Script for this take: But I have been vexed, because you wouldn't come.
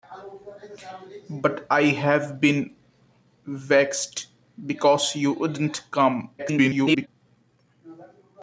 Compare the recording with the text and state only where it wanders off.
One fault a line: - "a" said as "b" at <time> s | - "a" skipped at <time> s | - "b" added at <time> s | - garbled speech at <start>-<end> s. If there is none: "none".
- garbled speech at 6.4-7.1 s